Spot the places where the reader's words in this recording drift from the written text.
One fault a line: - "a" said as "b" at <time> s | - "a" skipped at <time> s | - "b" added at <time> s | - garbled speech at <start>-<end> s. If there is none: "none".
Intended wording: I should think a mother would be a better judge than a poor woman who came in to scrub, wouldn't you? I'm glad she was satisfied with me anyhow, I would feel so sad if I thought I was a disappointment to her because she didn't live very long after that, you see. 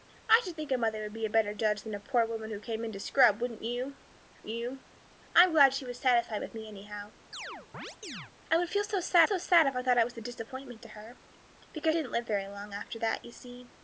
- "you" added at 4.5 s
- "so sad" added at 9.2 s
- "she" skipped at 12.0 s